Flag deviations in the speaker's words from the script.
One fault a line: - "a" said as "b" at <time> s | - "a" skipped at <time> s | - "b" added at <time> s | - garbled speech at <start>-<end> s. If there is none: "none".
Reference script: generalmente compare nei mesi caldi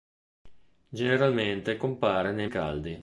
- "mesi" skipped at 2.5 s